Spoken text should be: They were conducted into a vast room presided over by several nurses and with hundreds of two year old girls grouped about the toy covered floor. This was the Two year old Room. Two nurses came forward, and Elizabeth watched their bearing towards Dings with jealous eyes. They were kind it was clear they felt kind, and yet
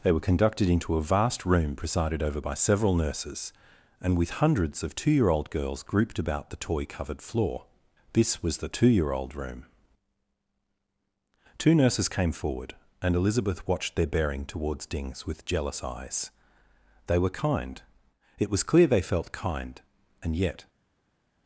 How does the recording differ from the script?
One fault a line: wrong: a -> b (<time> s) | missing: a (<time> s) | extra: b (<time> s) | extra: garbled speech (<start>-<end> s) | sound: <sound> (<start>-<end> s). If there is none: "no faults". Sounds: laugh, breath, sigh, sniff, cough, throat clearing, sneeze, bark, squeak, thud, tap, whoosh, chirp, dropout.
no faults